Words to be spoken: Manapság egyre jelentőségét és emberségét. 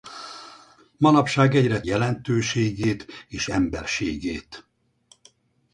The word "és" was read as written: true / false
true